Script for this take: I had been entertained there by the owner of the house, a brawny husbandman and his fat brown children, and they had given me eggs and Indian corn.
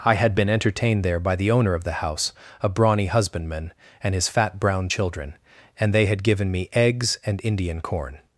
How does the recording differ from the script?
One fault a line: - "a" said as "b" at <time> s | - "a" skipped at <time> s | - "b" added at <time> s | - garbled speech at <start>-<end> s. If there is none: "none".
none